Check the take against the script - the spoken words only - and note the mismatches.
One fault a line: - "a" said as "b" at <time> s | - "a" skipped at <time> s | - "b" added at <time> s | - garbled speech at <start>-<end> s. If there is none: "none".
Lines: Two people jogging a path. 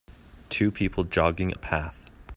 none